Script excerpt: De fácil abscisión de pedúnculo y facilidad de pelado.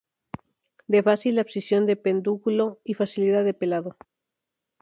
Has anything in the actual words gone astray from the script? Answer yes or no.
no